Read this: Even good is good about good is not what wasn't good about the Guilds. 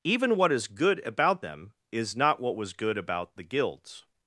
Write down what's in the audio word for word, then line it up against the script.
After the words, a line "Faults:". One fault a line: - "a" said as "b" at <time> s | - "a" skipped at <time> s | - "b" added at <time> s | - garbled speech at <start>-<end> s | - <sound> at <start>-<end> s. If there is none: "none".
Even what is good about them is not what was good about the Guilds.
Faults:
- "good" said as "what" at 0.3 s
- "good" said as "them" at 1.4 s
- "wasn't" said as "was" at 2.5 s